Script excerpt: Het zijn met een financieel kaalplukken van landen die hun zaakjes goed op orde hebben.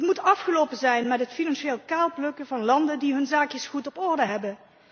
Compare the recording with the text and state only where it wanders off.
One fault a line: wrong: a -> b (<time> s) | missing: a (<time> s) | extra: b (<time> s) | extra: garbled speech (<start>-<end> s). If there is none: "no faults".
extra: moet afgelopen (0.1 s)
wrong: een -> het (1.2 s)